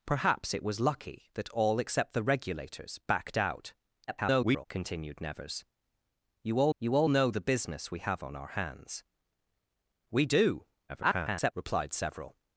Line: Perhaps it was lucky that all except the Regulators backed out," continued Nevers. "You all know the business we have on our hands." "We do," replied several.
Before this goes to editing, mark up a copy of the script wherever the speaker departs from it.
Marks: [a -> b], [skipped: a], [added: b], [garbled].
Perhaps it was lucky that all except the Regulators backed out," [garbled] continued Nevers. "You all [added: you all] know the business we have on our hands." "We do," [garbled] replied several.